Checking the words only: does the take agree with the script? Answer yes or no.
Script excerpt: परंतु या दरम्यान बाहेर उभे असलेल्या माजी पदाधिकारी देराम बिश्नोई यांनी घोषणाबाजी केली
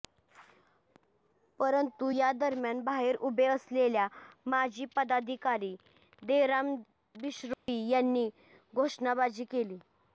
yes